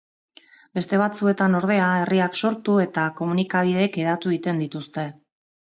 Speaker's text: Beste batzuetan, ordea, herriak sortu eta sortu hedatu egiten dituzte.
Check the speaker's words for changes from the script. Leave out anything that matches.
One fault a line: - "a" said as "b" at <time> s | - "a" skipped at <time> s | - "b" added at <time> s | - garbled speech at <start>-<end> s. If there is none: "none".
- "sortu" said as "komunikabideek" at 3.2 s